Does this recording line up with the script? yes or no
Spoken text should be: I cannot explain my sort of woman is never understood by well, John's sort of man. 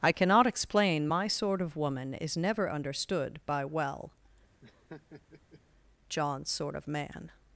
yes